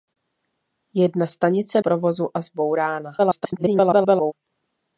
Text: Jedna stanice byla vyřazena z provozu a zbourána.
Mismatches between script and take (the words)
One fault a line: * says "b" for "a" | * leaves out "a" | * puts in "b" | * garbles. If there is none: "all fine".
* leaves out "byla vyřazena z"
* garbles